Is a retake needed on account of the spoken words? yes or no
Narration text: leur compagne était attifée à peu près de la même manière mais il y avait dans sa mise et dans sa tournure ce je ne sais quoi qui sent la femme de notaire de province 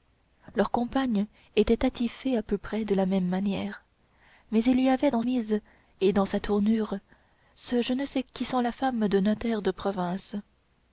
yes